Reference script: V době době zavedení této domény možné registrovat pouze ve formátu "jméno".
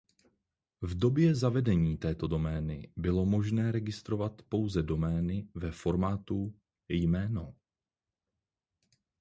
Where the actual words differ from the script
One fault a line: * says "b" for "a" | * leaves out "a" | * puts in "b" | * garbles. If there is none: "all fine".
* leaves out "době"
* puts in "bylo"
* puts in "domény"